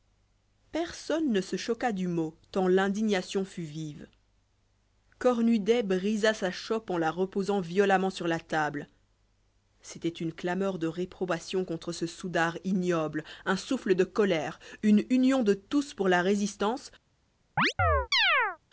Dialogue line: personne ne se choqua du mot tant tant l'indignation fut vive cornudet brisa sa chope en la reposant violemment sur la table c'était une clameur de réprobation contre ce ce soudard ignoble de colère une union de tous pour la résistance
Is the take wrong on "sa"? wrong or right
right